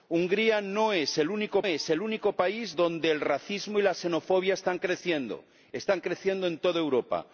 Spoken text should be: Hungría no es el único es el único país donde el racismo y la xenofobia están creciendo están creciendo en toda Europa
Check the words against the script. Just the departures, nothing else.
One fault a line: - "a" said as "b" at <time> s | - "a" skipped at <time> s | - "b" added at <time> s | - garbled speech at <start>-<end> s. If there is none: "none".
none